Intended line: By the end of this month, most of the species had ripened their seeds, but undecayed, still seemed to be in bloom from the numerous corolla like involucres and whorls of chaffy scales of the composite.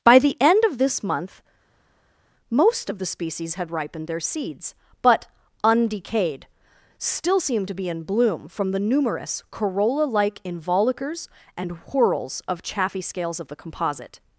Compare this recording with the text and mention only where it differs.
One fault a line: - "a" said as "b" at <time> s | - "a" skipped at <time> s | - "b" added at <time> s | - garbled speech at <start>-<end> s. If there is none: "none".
none